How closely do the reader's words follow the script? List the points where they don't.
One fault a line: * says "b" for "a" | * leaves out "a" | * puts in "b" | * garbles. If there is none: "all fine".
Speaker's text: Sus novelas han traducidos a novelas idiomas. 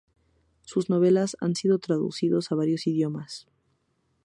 * puts in "sido"
* says "varios" for "novelas"